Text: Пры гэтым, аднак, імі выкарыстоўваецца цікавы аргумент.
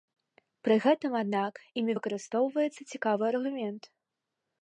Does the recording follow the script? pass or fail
pass